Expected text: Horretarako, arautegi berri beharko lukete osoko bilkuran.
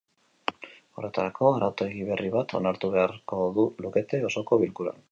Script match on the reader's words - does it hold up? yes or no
no